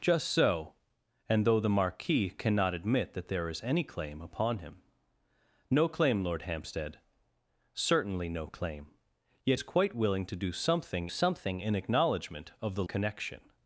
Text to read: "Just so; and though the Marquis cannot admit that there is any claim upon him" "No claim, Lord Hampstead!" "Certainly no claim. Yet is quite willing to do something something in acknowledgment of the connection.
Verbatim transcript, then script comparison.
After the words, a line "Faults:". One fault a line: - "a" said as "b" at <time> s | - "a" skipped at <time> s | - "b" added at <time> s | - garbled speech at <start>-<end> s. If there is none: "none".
"Just so; and though the Marquis cannot admit that there is any claim upon him" "No claim, Lord Hampstead!" "Certainly no claim. Yet is quite willing to do something something in acknowledgment of the connection.
Faults:
none